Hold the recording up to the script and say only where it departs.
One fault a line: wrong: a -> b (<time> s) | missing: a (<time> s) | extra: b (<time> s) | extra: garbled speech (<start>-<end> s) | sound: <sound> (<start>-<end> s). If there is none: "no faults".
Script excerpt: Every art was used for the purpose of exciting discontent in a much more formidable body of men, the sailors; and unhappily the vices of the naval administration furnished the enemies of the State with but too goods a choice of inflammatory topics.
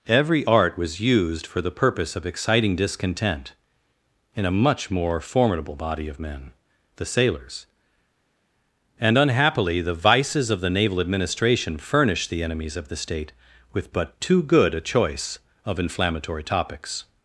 wrong: goods -> good (14.4 s)